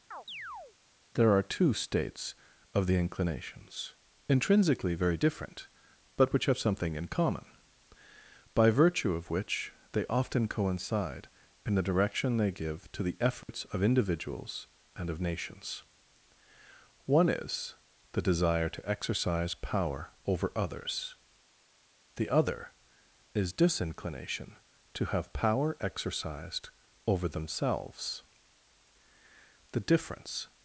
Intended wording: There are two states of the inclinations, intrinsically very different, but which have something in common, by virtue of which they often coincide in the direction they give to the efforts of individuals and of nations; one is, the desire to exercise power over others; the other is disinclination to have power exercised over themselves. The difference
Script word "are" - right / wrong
right